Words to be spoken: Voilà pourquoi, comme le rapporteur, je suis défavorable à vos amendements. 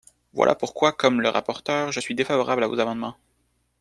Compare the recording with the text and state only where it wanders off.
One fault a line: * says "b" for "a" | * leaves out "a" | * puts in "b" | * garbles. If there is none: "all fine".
all fine